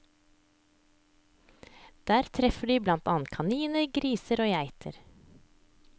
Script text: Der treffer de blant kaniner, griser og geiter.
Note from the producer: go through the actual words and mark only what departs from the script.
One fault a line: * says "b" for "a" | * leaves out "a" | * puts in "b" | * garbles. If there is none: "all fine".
* puts in "annet"